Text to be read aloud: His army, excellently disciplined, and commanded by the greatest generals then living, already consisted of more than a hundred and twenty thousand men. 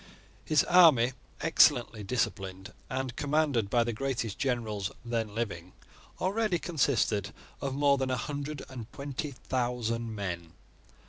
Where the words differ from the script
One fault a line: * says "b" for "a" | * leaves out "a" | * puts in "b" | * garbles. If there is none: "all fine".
all fine